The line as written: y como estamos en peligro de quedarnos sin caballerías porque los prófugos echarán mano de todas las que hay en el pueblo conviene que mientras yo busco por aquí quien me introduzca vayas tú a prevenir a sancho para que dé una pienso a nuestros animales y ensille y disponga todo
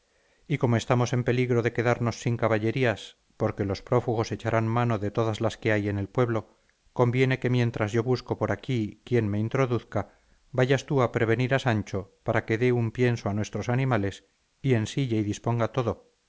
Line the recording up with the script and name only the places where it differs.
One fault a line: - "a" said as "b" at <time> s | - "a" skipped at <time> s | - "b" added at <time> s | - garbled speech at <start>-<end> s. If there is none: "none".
- "una" said as "un" at 12.7 s